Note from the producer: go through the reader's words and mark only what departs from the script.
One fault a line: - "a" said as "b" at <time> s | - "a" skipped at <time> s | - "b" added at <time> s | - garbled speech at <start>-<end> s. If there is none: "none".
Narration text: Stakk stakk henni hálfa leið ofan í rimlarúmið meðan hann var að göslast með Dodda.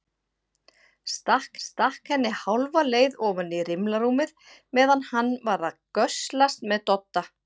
none